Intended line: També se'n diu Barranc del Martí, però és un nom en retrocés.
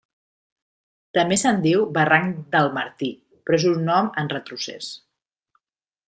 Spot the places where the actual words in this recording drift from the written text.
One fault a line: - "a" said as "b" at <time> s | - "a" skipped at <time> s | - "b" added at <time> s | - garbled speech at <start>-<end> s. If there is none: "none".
none